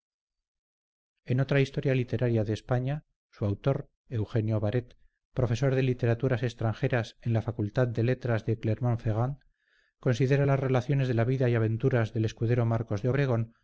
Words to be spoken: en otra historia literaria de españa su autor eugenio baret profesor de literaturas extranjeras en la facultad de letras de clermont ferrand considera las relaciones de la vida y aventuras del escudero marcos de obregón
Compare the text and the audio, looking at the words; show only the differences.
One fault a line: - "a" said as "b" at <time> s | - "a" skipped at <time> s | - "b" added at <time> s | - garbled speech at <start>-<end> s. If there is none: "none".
none